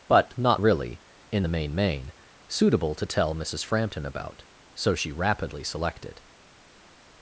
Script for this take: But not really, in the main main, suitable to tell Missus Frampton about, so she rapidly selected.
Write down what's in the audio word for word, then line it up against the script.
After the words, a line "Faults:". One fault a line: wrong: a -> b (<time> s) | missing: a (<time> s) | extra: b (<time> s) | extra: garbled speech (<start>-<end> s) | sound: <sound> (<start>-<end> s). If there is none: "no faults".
But not really, in the main main, suitable to tell Missus Frampton about, so she rapidly selected.
Faults:
no faults